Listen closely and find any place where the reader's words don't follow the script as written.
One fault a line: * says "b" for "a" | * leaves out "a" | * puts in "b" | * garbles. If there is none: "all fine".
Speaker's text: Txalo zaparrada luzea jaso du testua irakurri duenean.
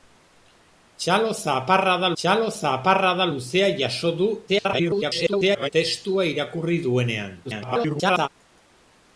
* puts in "txalo zaparrada"
* garbles
* garbles